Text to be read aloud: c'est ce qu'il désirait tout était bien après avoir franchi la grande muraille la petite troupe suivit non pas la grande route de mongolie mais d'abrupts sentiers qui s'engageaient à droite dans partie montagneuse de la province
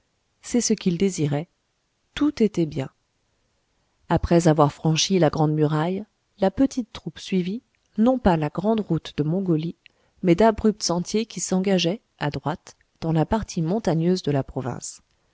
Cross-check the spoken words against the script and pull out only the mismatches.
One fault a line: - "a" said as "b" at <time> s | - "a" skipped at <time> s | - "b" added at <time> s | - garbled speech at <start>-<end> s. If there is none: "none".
- "la" added at 13.1 s